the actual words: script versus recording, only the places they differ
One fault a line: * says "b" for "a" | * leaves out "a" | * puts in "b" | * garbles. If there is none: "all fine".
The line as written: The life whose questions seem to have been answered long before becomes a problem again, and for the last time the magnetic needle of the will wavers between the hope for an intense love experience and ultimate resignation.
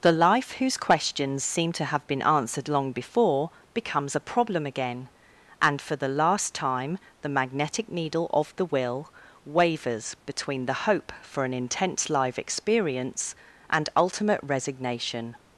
* says "live" for "love"